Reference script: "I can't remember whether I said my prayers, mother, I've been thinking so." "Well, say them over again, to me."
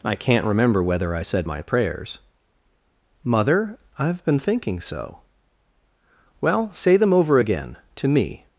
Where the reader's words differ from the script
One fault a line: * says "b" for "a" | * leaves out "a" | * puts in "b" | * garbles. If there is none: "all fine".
all fine